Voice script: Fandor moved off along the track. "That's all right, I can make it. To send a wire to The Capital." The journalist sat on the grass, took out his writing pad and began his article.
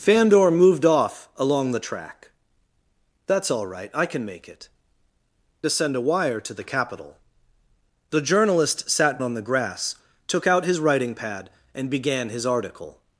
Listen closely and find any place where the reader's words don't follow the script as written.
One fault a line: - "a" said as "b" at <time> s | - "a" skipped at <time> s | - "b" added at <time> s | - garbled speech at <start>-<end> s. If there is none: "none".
none